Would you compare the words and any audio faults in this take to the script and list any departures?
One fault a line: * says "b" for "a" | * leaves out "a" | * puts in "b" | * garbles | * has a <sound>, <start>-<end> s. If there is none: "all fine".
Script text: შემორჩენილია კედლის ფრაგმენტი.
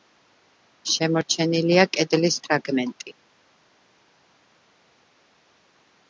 all fine